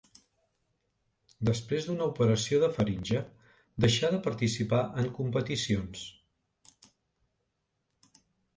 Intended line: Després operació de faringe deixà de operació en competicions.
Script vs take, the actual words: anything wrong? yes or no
yes